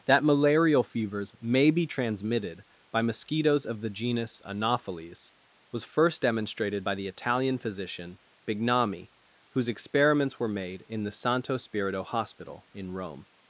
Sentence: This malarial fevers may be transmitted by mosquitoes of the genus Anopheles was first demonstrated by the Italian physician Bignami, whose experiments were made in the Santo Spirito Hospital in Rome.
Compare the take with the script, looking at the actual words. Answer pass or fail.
fail